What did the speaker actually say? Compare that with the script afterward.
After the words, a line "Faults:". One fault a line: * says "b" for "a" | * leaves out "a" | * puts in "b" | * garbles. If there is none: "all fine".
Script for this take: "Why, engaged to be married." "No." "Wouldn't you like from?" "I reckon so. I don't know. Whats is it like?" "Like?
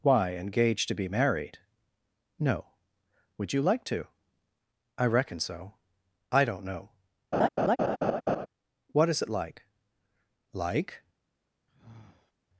"Why, engaged to be married." "No." "Would you like to?" "I reckon so. I don't know. What is it like?" "Like?
Faults:
* says "Would" for "Wouldn't"
* says "to" for "from"
* says "What" for "Whats"